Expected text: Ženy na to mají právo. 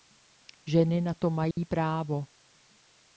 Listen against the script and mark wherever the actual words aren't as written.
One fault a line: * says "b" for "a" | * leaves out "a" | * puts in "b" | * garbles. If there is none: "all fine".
all fine